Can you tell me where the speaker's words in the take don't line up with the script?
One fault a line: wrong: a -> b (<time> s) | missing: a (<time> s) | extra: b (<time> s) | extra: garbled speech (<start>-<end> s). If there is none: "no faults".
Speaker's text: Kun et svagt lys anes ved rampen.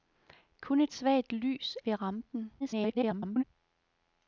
missing: anes (1.8 s)
extra: garbled speech (2.6-3.4 s)